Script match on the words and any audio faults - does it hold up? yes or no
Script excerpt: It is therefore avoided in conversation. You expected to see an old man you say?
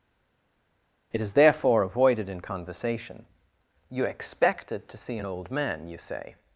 yes